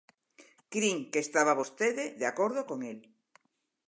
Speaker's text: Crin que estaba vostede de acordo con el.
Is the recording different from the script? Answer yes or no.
no